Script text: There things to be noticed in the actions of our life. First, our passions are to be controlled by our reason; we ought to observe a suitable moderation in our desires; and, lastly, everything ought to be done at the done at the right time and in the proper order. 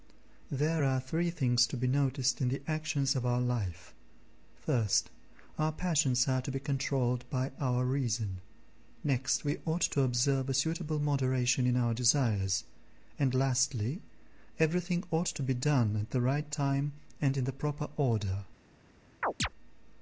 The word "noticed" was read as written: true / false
true